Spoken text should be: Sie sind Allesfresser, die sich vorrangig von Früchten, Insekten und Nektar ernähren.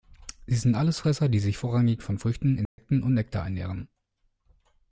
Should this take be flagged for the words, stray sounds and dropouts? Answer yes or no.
yes